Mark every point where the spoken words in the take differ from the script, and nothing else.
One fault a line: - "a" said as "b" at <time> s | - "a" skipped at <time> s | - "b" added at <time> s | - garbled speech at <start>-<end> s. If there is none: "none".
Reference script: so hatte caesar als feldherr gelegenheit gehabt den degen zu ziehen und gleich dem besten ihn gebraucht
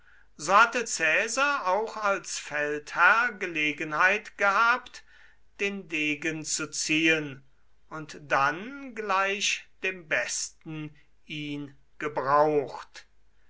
- "auch" added at 1.7 s
- "dann" added at 8.2 s